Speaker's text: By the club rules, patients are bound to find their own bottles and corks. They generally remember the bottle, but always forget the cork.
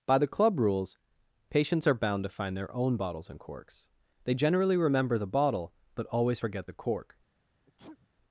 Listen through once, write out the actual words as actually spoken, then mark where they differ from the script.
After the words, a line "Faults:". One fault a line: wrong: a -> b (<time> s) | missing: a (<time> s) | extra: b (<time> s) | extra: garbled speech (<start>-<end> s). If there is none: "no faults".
By the club rules, patients are bound to find their own bottles and corks. They generally remember the bottle, but always forget the cork.
Faults:
no faults